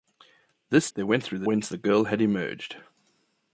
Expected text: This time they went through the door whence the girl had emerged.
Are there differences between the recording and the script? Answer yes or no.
yes